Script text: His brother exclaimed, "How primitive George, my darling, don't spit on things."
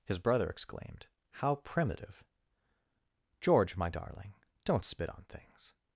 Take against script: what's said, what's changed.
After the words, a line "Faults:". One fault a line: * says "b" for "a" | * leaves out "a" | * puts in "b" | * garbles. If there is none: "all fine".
His brother exclaimed, "How primitive George, my darling, don't spit on things."
Faults:
all fine